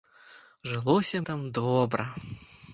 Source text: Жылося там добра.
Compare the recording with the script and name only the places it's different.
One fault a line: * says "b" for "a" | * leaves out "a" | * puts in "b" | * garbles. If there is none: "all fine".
all fine